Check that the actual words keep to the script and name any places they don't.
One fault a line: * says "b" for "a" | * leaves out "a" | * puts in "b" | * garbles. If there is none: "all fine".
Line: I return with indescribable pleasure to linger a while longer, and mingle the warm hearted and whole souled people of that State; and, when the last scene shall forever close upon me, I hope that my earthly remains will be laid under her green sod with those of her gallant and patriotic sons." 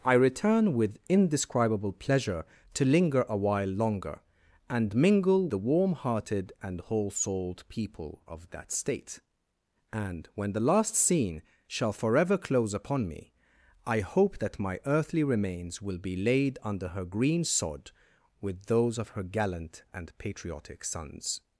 all fine